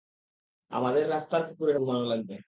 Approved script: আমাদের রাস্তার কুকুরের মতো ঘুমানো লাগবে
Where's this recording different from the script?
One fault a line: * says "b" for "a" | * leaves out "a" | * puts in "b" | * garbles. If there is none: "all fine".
* leaves out "মতো"